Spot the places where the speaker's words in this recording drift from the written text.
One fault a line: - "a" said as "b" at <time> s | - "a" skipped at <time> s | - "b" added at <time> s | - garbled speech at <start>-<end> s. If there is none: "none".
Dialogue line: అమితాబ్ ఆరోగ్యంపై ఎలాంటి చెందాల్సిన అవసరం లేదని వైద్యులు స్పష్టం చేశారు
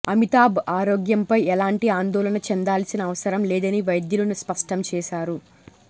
- "ఆందోళన" added at 1.9 s